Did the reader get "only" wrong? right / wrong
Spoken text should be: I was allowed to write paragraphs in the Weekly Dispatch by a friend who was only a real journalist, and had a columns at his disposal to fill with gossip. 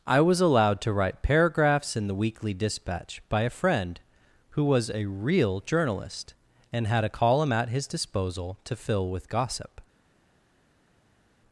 wrong